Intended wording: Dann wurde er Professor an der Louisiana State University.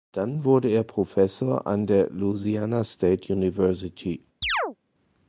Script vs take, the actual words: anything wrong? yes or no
no